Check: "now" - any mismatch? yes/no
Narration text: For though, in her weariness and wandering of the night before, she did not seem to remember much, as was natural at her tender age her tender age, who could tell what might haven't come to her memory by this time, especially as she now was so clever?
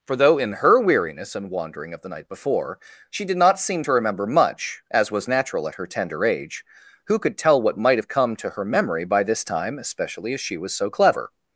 yes